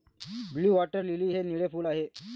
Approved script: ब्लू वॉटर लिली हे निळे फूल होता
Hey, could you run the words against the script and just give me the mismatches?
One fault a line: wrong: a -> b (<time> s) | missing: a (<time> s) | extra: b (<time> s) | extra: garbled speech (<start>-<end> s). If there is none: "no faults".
wrong: होता -> आहे (1.9 s)